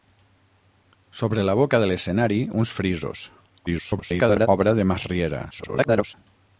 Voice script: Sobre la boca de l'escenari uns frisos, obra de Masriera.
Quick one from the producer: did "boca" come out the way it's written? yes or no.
yes